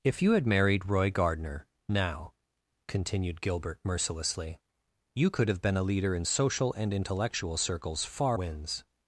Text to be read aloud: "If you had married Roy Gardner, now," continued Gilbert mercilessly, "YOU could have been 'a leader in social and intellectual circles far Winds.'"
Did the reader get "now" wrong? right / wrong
right